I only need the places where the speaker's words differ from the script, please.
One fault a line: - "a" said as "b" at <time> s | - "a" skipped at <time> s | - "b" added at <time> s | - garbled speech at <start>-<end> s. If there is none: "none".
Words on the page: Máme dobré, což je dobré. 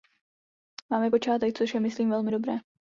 - "dobré" said as "počátek" at 1.1 s
- "myslím velmi" added at 1.8 s